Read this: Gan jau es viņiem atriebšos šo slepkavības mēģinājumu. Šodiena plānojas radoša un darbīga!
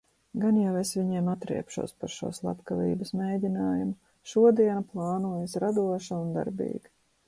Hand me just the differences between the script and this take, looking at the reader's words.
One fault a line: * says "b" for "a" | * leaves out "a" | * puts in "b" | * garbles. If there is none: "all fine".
* puts in "par"